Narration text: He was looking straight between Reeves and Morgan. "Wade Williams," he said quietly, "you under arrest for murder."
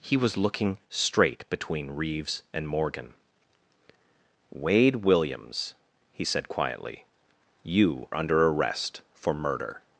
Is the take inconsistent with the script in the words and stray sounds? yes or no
no